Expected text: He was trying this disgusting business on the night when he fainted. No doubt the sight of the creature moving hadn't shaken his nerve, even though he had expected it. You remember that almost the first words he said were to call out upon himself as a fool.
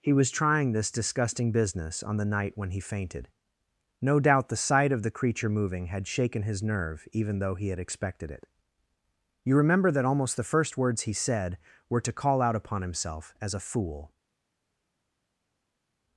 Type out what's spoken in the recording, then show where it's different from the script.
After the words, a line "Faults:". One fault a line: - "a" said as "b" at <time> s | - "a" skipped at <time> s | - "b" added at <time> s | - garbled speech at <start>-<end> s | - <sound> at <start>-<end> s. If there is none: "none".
He was trying this disgusting business on the night when he fainted. No doubt the sight of the creature moving had shaken his nerve, even though he had expected it. You remember that almost the first words he said were to call out upon himself as a fool.
Faults:
- "hadn't" said as "had" at 5.8 s